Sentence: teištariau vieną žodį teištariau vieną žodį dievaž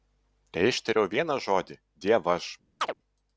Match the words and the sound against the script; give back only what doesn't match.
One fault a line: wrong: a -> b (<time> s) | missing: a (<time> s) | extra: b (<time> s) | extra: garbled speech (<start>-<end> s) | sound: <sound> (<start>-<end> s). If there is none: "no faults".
missing: teištariau vieną žodį (1.8 s)
sound: chirp (2.8-2.9 s)